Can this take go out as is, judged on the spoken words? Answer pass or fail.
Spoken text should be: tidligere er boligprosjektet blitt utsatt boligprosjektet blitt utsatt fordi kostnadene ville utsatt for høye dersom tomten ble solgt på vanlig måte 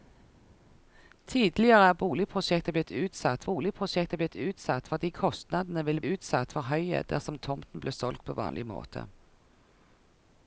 pass